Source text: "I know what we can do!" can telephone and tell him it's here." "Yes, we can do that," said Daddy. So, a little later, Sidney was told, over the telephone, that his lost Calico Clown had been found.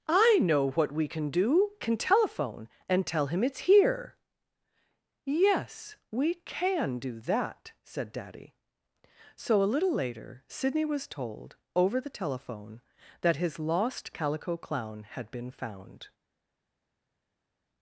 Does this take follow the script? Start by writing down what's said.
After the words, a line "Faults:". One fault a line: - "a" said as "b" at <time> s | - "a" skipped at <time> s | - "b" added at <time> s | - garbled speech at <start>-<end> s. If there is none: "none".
"I know what we can do!" can telephone and tell him it's here." "Yes, we can do that," said Daddy. So, a little later, Sidney was told, over the telephone, that his lost Calico Clown had been found.
Faults:
none